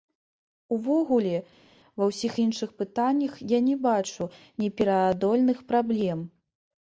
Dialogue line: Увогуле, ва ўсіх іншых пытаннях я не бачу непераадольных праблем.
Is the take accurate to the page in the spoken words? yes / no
yes